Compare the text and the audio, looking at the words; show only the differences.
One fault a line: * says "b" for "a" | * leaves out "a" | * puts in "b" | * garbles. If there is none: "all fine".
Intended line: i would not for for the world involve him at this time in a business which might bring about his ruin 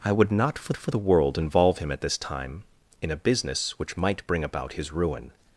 all fine